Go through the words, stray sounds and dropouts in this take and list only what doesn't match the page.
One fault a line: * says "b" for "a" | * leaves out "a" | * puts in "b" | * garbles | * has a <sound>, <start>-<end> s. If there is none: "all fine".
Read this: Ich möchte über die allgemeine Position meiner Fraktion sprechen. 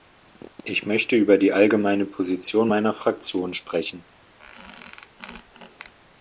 * has a squeak, 4.4-5.9 s